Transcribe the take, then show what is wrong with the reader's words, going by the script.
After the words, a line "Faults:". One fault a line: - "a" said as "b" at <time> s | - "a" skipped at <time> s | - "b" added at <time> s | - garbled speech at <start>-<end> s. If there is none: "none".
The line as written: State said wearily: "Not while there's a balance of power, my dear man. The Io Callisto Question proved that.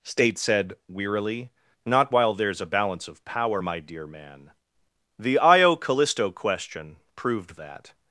State said wearily: "Not while there's a balance of power, my dear man. The Io Callisto Question proved that.
Faults:
none